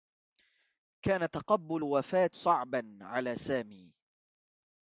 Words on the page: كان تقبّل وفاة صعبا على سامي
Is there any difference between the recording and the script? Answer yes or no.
no